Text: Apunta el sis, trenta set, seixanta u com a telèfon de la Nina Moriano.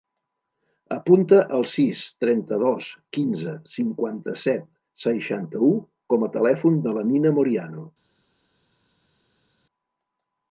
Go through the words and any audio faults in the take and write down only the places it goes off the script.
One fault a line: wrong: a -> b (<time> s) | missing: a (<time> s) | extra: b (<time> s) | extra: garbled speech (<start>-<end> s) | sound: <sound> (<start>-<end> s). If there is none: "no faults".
extra: dos quinze cinquanta (2.6 s)